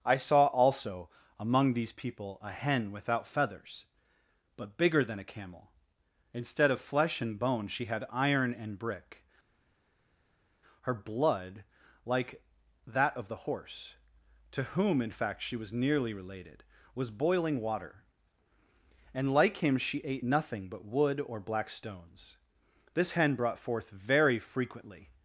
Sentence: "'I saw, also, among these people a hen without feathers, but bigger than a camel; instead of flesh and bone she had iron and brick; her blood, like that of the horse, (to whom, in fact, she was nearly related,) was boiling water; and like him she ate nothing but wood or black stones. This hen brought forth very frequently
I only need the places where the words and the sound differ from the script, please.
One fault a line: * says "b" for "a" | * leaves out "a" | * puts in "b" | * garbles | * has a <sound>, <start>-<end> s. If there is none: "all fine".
all fine